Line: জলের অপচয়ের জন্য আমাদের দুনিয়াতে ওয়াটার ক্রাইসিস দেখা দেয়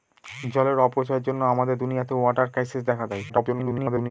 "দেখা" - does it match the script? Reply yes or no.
yes